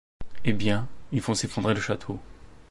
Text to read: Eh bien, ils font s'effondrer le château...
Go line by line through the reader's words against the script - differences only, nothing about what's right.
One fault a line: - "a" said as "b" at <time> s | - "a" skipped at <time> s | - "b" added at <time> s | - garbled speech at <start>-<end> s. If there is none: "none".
none